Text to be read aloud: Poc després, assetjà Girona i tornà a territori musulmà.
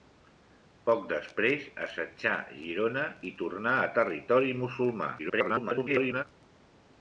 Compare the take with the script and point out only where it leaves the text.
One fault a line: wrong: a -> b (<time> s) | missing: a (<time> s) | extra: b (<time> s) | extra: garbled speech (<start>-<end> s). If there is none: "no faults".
extra: garbled speech (5.2-6.2 s)